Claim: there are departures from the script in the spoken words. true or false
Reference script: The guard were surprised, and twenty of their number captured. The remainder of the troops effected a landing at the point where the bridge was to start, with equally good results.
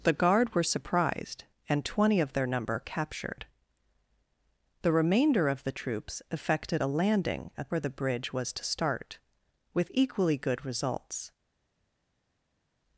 true